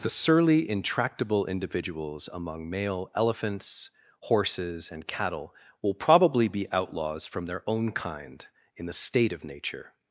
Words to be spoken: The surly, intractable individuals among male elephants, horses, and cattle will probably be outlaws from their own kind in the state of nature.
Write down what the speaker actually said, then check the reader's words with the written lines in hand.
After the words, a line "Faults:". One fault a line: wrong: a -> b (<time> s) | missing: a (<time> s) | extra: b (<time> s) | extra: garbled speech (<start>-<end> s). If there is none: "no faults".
The surly, intractable individuals among male elephants, horses, and cattle will probably be outlaws from their own kind in the state of nature.
Faults:
no faults